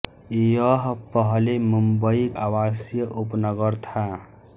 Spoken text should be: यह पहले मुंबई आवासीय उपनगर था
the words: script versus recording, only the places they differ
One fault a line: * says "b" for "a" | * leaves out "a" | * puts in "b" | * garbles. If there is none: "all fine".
all fine